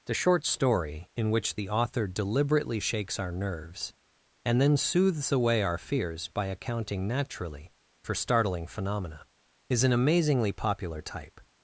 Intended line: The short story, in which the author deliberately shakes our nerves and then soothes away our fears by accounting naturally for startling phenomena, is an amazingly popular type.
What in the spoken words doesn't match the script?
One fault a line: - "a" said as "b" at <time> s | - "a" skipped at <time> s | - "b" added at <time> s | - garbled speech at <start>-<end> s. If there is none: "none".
none